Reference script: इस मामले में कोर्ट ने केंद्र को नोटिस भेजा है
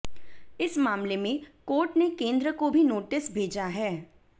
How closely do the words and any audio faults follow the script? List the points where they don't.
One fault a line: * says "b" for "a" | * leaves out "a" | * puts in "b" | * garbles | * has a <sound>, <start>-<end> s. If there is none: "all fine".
* puts in "भी"